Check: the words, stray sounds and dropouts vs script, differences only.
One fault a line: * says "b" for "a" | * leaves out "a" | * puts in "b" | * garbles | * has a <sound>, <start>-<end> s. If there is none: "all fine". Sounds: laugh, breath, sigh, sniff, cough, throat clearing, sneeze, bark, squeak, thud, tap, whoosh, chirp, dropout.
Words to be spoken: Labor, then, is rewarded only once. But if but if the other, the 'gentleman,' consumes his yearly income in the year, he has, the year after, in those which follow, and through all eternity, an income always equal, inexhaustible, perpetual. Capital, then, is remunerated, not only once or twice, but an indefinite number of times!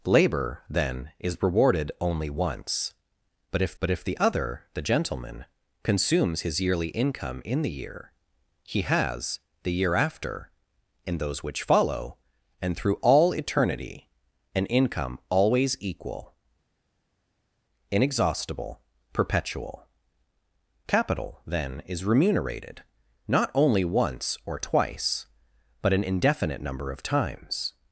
all fine